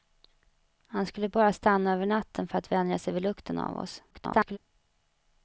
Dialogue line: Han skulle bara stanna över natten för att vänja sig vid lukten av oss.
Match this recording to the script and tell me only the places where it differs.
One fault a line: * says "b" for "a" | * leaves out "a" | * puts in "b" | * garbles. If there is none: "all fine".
* garbles